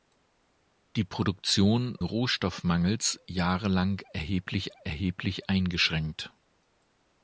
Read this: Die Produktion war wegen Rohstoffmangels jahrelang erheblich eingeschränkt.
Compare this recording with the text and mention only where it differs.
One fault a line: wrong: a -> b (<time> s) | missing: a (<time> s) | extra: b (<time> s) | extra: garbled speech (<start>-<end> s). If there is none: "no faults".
missing: war wegen (1.9 s)
extra: erheblich (4.8 s)